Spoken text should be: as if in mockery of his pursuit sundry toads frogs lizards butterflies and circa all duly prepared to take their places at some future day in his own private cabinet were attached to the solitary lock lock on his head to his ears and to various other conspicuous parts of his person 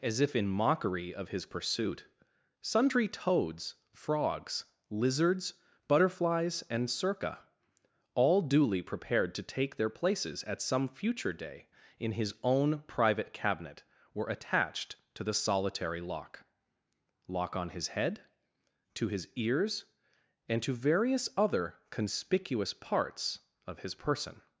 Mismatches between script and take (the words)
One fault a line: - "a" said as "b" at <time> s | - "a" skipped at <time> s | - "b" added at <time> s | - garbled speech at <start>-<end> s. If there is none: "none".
none